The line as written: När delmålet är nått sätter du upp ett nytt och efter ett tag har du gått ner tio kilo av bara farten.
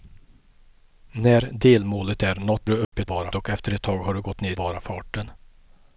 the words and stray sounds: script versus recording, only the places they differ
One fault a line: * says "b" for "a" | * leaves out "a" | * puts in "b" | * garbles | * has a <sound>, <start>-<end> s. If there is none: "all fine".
* leaves out "sätter"
* has a dropout, 2.8-2.9 s
* says "bara" for "nytt"
* leaves out "tio kilo av"